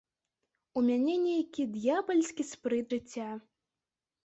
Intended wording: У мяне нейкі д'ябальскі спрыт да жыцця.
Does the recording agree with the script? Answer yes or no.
no